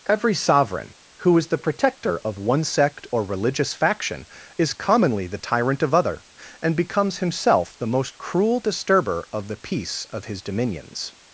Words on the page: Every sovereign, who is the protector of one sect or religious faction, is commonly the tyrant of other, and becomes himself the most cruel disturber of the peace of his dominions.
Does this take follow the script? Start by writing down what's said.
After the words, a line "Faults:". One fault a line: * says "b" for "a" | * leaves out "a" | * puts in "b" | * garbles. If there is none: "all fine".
Every sovereign, who is the protector of one sect or religious faction, is commonly the tyrant of other, and becomes himself the most cruel disturber of the peace of his dominions.
Faults:
all fine